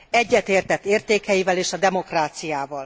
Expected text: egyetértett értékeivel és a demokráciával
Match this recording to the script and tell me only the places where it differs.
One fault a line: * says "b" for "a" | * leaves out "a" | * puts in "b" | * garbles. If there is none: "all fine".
all fine